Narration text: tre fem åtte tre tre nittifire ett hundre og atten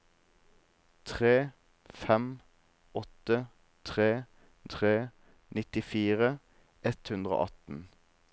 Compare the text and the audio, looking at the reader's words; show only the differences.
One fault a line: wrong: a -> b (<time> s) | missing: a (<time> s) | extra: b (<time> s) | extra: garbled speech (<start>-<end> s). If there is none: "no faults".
no faults